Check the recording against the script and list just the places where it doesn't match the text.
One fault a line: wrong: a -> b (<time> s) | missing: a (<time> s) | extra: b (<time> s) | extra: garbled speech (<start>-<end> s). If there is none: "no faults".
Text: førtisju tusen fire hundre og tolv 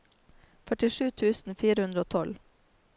no faults